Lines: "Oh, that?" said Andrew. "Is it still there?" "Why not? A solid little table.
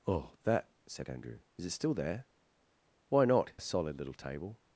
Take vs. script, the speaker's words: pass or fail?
pass